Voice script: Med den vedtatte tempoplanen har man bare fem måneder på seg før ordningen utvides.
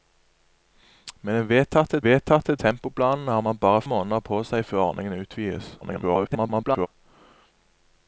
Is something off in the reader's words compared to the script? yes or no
yes